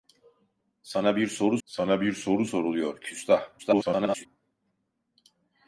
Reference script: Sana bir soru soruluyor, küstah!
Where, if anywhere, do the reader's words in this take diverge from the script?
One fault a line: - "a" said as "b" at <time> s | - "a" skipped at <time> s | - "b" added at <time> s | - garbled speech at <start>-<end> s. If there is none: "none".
- "sana bir soru" added at 1.7 s
- garbled speech at 3.6-4.3 s